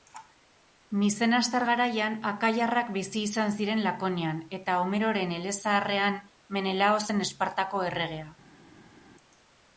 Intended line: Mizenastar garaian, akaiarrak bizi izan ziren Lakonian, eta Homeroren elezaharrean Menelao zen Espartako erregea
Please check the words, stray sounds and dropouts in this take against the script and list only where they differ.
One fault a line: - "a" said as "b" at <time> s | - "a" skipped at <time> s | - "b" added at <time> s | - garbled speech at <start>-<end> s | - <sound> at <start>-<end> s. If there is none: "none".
none